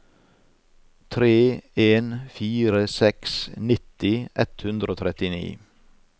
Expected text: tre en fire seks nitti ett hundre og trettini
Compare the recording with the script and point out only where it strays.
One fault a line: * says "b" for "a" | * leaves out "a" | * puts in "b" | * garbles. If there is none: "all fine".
all fine